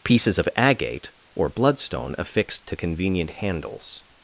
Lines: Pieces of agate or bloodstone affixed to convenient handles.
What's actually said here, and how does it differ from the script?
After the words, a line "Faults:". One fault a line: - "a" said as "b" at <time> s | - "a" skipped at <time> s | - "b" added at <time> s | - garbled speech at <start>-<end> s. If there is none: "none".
Pieces of agate or bloodstone affixed to convenient handles.
Faults:
none